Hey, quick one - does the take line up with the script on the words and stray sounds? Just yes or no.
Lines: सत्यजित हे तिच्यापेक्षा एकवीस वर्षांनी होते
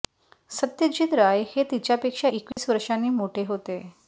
no